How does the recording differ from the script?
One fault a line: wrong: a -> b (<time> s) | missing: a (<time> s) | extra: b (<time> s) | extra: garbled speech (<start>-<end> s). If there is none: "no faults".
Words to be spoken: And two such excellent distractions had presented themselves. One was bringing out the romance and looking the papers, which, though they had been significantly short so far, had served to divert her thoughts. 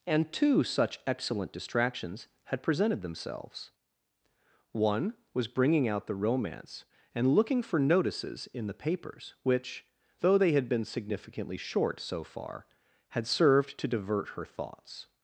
extra: for notices in (7.6 s)